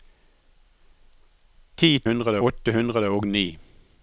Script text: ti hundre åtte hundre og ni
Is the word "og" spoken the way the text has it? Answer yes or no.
yes